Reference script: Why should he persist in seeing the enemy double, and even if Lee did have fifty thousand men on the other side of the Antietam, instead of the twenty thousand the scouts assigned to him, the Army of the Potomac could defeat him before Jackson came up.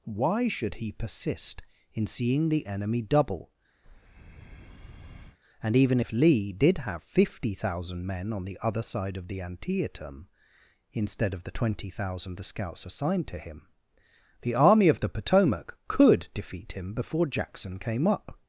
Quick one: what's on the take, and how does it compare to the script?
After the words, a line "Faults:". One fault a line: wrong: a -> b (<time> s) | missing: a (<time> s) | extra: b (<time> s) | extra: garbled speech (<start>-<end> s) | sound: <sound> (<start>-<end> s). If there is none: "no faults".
Why should he persist in seeing the enemy double, and even if Lee did have fifty thousand men on the other side of the Antietam, instead of the twenty thousand the scouts assigned to him, the Army of the Potomac could defeat him before Jackson came up.
Faults:
sound: breath (3.8-5.4 s)